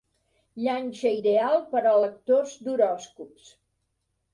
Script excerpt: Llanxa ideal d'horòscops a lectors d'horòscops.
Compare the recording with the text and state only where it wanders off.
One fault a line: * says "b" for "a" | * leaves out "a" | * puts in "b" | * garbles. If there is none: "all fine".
* says "per" for "d'horòscops"